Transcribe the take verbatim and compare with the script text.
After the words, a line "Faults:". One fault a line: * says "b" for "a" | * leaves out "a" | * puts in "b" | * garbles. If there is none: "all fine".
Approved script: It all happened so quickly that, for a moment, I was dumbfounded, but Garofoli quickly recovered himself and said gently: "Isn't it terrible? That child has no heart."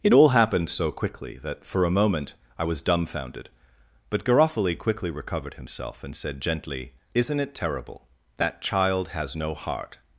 It all happened so quickly that, for a moment, I was dumbfounded, but Garofoli quickly recovered himself and said gently: "Isn't it terrible? That child has no heart."
Faults:
all fine